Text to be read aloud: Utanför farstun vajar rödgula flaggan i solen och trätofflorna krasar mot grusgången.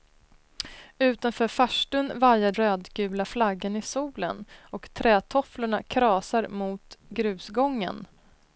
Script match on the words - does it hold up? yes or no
yes